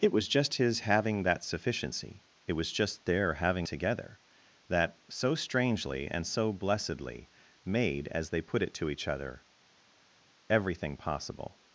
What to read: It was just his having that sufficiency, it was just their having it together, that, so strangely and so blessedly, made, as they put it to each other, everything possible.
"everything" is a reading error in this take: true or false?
false